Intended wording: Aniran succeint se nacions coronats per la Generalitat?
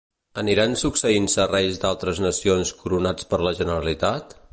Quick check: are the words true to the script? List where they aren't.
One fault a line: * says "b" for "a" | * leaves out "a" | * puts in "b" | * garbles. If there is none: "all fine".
* puts in "reis d'altres"